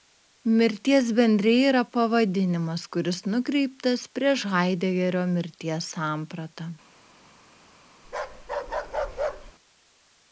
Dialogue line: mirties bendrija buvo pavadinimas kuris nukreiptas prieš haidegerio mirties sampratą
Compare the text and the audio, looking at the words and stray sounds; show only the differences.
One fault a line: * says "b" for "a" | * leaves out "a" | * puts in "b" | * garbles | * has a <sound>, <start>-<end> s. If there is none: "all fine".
* says "yra" for "buvo"
* has a bark, 8.0-9.5 s